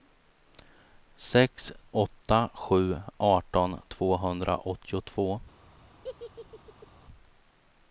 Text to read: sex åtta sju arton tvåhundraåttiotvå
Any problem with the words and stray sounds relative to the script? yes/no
yes